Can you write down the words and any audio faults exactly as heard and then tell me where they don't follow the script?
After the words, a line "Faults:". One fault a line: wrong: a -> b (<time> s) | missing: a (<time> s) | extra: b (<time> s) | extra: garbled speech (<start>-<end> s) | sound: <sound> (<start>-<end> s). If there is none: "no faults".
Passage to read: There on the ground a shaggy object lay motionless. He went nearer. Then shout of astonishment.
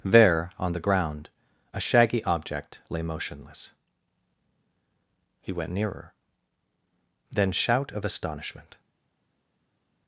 There on the ground a shaggy object lay motionless. He went nearer. Then shout of astonishment.
Faults:
no faults